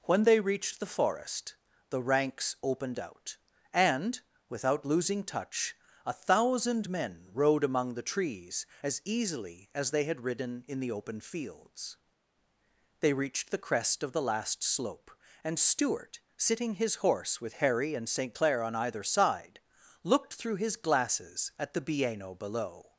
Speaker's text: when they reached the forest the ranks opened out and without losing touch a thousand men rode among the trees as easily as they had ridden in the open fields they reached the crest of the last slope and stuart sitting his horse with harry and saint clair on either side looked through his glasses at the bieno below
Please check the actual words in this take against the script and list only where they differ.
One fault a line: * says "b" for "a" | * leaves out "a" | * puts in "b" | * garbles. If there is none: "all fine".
all fine